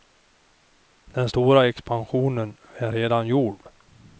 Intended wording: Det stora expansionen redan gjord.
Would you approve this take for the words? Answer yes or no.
no